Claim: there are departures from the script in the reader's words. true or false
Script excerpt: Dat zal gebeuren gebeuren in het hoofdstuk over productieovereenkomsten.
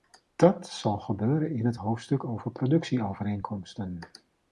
true